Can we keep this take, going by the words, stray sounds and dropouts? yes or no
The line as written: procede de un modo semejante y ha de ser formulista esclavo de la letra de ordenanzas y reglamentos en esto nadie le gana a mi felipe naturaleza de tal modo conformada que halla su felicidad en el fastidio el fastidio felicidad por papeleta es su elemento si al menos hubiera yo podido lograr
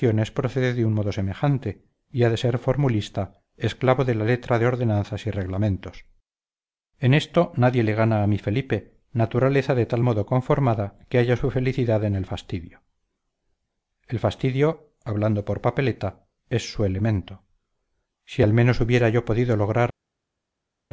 no